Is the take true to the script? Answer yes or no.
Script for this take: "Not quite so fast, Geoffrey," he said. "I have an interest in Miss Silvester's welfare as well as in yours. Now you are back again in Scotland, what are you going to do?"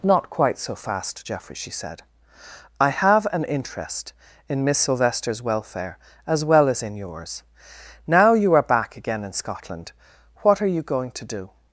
no